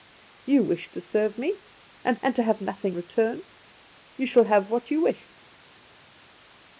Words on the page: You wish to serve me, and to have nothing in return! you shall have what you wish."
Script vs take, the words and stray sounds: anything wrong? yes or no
yes